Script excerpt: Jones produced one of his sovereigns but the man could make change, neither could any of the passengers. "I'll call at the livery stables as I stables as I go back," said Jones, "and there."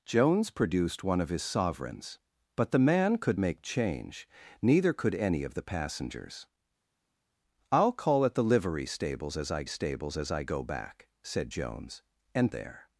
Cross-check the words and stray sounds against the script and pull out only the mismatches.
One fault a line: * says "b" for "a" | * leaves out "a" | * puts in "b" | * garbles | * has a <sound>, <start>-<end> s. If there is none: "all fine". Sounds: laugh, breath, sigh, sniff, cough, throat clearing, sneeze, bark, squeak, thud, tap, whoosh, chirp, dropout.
all fine